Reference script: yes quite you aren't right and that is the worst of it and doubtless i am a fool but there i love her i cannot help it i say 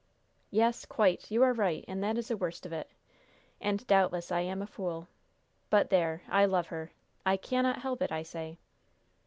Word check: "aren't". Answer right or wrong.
wrong